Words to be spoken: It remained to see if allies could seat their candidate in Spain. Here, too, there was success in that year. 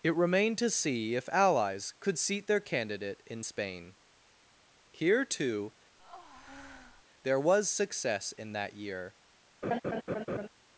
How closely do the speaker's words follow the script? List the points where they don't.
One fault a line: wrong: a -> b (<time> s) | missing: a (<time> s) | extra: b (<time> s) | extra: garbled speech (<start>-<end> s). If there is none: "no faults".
no faults